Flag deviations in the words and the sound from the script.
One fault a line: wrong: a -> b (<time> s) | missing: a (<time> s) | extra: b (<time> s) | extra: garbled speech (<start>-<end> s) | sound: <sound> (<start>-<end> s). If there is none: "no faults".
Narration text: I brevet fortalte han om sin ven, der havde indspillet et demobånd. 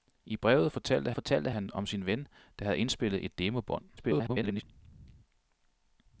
extra: fortalte (1.1 s)
extra: garbled speech (4.0-4.6 s)